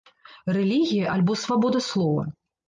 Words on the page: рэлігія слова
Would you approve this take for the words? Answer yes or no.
no